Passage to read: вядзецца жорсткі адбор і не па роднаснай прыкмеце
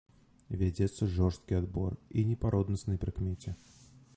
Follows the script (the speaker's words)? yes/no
yes